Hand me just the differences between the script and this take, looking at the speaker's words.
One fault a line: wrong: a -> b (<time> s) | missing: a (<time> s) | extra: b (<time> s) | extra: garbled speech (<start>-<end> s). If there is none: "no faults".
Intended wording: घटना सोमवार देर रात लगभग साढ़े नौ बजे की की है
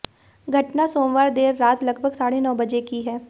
missing: की (3.0 s)